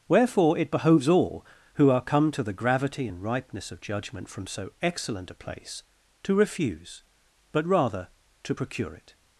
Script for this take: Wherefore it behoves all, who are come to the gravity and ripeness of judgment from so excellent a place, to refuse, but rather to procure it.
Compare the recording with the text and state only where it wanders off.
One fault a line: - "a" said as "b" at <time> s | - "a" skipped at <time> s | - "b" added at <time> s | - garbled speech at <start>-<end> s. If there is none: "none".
none